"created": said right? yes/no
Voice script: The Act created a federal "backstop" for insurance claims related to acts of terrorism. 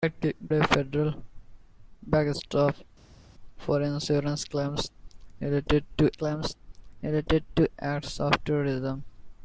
no